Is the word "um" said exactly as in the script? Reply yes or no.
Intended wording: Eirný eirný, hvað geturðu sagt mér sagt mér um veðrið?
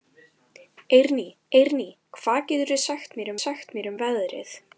yes